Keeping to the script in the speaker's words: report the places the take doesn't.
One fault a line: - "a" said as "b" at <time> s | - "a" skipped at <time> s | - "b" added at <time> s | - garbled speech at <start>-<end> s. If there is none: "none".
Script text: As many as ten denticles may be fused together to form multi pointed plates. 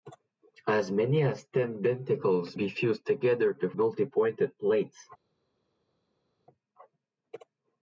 - "may" skipped at 2.6 s
- "form" skipped at 3.7 s